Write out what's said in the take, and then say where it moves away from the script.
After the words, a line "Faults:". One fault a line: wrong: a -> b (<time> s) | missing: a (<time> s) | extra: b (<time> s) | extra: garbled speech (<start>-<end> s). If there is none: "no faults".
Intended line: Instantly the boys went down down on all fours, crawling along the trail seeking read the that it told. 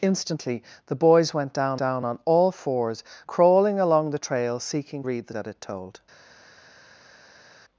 Instantly the boys went down down on all fours, crawling along the trail seeking read the that it told.
Faults:
no faults